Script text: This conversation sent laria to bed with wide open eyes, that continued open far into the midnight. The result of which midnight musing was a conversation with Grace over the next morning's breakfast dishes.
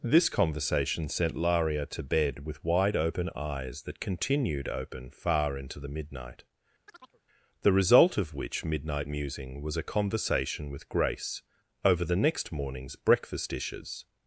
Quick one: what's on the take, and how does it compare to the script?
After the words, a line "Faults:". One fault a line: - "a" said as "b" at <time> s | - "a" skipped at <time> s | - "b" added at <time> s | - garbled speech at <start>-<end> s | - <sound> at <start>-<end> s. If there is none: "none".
This conversation sent laria to bed with wide open eyes, that continued open far into the midnight. The result of which midnight musing was a conversation with Grace over the next morning's breakfast dishes.
Faults:
- chirp at 6.9-7.2 s